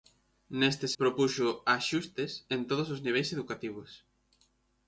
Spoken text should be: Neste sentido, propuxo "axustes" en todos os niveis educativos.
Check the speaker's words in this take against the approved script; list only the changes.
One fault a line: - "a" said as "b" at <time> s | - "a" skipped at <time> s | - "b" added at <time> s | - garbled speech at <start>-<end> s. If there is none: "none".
- "sentido" skipped at 0.9 s